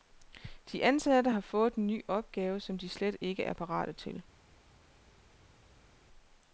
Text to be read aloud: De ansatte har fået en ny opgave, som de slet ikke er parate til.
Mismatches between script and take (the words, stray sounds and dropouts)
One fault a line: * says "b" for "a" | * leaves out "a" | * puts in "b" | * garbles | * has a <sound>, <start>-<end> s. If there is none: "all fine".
all fine